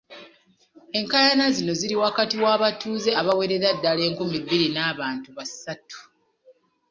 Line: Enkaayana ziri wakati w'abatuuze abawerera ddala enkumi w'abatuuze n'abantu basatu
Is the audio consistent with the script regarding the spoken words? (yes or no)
no